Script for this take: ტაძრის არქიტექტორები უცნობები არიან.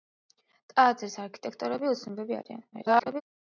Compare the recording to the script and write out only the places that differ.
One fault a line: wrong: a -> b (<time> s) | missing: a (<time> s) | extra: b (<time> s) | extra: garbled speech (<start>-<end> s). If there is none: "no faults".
extra: garbled speech (2.7-3.2 s)